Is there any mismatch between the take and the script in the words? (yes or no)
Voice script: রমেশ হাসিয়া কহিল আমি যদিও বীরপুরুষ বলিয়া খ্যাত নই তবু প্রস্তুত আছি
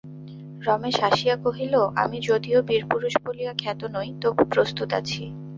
no